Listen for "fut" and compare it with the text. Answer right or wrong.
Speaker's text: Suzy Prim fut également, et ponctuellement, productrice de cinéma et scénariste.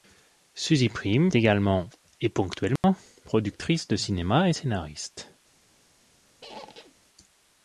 wrong